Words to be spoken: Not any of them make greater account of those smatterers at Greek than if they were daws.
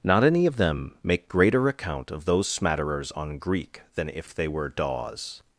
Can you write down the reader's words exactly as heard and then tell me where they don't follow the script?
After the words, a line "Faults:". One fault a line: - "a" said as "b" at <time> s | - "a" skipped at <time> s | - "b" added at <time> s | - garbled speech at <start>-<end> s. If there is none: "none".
Not any of them make greater account of those smatterers on Greek than if they were daws.
Faults:
- "at" said as "on" at 3.1 s